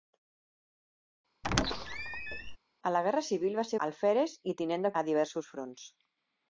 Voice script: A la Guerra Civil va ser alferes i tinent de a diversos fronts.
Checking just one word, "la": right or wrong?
right